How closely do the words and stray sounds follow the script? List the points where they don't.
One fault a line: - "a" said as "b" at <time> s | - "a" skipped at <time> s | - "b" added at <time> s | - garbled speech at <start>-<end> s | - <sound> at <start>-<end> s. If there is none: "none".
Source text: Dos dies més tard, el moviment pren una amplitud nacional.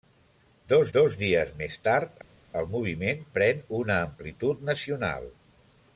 - "dos" added at 1.0 s